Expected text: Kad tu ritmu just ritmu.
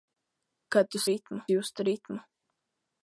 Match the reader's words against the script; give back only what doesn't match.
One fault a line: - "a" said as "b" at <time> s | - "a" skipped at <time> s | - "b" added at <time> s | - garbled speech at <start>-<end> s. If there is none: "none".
none